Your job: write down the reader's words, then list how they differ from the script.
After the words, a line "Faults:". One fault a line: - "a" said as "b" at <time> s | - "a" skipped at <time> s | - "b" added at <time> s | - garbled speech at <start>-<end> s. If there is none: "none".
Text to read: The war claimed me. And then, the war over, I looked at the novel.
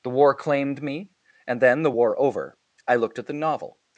The war claimed me. And then, the war over, I looked at the novel.
Faults:
none